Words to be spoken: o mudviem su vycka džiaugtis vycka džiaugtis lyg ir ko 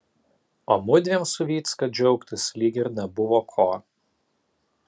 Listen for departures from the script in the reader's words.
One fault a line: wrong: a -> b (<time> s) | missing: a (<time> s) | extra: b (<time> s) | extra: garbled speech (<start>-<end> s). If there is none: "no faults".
missing: vycka džiaugtis (2.4 s)
extra: nebuvo (3.0 s)